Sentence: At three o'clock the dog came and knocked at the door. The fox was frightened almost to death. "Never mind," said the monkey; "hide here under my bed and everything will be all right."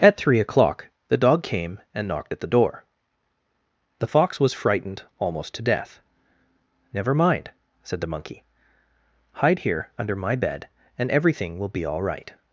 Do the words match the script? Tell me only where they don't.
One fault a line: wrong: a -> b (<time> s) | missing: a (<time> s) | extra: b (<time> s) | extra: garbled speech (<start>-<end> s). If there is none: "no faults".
no faults